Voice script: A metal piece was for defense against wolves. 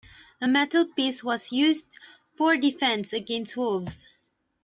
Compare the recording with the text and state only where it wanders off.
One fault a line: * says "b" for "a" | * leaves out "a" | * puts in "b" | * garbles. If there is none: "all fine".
* puts in "used"